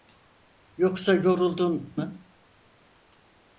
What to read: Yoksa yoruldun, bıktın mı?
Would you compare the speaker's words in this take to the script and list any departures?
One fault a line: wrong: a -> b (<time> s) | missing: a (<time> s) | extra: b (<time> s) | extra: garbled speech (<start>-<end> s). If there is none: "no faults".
missing: bıktın (1.9 s)